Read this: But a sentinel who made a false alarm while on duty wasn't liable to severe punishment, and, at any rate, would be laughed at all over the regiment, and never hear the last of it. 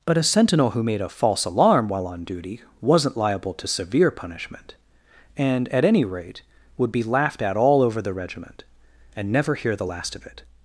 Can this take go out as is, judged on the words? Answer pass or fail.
pass